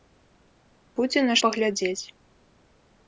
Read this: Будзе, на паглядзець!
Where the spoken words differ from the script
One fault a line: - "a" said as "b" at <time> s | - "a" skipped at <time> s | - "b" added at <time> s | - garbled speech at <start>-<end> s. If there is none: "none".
none